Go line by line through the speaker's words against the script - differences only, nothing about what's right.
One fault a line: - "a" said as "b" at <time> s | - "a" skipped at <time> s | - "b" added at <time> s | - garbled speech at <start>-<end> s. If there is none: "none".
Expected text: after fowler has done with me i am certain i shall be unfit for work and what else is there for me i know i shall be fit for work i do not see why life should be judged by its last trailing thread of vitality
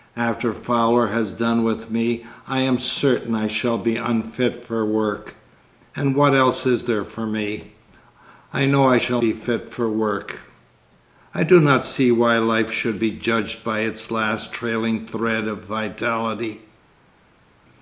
none